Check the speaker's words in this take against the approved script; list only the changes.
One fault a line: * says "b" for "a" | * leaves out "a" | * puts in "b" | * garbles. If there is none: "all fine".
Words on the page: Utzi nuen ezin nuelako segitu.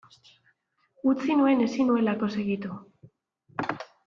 all fine